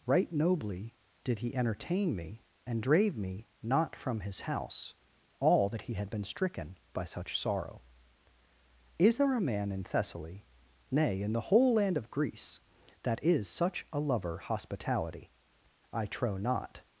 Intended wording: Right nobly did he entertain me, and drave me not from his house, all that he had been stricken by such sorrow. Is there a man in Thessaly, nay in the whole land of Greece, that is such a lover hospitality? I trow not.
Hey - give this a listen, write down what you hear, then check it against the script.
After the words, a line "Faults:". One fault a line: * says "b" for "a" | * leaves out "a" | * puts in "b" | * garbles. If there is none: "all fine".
Right nobly did he entertain me, and drave me not from his house, all that he had been stricken by such sorrow. Is there a man in Thessaly, nay in the whole land of Greece, that is such a lover hospitality? I trow not.
Faults:
all fine